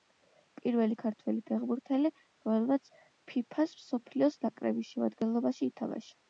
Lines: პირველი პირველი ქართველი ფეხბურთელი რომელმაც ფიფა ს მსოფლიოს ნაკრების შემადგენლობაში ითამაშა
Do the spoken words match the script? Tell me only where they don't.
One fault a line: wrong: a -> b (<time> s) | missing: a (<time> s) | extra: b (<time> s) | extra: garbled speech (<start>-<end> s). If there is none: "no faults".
missing: პირველი (0.9 s)